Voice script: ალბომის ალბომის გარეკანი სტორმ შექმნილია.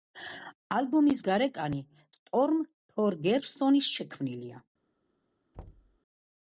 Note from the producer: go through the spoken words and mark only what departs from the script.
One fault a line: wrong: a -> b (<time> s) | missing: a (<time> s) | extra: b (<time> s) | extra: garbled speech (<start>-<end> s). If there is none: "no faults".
missing: ალბომის (1.2 s)
extra: თორგერსონის (3.0 s)